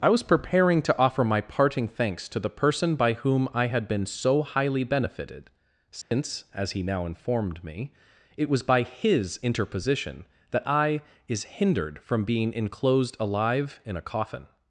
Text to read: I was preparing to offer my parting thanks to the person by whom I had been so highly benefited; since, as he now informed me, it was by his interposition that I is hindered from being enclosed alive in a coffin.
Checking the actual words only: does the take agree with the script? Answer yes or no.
yes